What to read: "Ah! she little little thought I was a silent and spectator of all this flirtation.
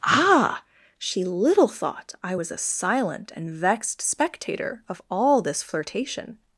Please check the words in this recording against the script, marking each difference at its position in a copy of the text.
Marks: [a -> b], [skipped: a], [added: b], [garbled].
"Ah! she little [skipped: little] thought I was a silent and [added: vexed] spectator of all this flirtation.